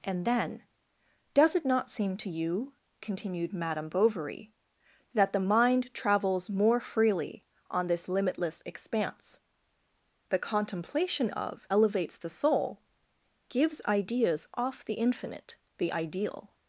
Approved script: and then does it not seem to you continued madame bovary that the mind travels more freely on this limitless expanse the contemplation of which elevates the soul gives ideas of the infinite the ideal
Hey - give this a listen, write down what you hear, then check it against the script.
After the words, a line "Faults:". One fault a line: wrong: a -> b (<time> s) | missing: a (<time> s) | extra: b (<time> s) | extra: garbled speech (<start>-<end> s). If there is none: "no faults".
and then does it not seem to you continued madame bovary that the mind travels more freely on this limitless expanse the contemplation of elevates the soul gives ideas off the infinite the ideal
Faults:
missing: which (11.7 s)
wrong: of -> off (14.5 s)